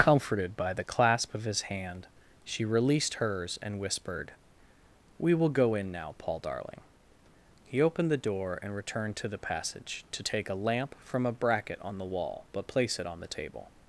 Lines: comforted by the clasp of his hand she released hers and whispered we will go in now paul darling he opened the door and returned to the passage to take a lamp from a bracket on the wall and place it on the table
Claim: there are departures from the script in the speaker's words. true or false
true